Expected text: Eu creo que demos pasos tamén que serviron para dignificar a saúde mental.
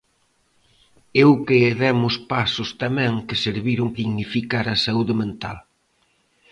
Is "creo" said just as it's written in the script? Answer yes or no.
no